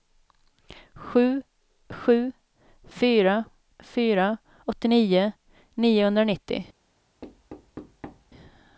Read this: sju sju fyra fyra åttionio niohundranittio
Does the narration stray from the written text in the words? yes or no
no